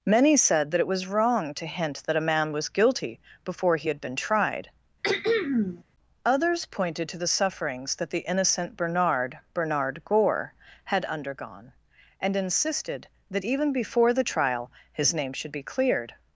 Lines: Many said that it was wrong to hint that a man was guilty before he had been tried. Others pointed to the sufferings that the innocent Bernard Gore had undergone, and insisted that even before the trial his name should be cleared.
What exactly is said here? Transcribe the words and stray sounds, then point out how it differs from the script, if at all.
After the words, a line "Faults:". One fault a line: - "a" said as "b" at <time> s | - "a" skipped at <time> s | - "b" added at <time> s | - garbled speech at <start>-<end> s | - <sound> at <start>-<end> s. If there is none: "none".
Many said that it was wrong to hint that a man was guilty before he had been tried. Others pointed to the sufferings that the innocent Bernard Bernard Gore had undergone, and insisted that even before the trial his name should be cleared.
Faults:
- throat clearing at 5.0-5.8 s
- "Bernard" added at 9.6 s